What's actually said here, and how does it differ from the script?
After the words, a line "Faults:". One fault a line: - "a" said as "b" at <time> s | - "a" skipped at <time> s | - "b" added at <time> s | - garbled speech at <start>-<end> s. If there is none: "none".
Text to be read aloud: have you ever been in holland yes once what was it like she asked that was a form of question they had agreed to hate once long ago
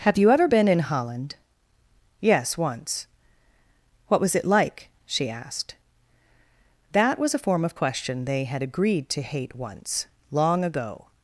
have you ever been in holland yes once what was it like she asked that was a form of question they had agreed to hate once long ago
Faults:
none